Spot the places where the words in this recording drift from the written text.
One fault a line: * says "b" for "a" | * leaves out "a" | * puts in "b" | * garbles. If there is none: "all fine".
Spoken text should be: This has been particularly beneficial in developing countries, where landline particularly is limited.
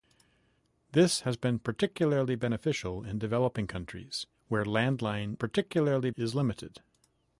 all fine